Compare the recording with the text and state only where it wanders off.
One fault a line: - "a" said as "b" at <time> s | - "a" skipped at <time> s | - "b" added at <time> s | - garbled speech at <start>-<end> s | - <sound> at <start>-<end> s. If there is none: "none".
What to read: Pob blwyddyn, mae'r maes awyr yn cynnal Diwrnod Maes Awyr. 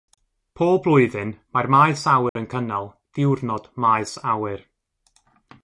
- dropout at 2.3-2.4 s